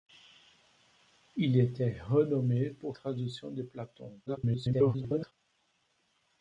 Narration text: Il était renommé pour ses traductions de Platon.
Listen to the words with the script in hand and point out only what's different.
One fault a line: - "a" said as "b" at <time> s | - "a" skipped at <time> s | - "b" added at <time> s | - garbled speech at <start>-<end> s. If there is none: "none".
- "ses" skipped at 3.0 s
- garbled speech at 4.3-5.3 s